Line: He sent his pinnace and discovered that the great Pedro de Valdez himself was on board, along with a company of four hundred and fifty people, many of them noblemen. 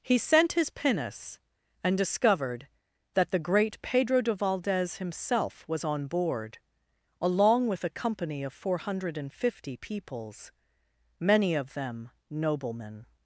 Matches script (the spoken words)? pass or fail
fail